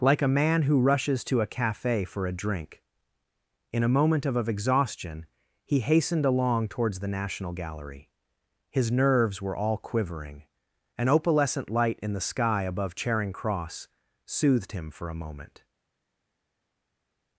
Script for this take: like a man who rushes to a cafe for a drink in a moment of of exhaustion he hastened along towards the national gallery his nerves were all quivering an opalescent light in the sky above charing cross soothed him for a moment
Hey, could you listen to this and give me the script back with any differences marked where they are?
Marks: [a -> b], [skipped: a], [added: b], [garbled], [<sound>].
like a man who rushes to a cafe for a drink in a moment of of exhaustion he hastened along towards the national gallery his nerves were all quivering an opalescent light in the sky above charing cross soothed him for a moment